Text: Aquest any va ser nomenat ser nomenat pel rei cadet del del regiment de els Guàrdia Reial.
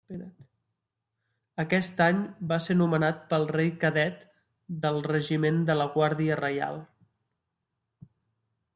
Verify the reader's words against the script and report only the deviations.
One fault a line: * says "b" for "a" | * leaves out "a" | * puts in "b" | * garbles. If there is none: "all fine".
* leaves out "ser nomenat"
* leaves out "del"
* says "la" for "els"